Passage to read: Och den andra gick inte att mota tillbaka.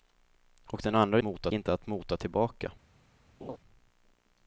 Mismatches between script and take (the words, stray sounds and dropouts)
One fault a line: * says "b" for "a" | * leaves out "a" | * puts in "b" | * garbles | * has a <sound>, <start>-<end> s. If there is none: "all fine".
* says "mota" for "gick"
* has a laugh, 3.4-3.6 s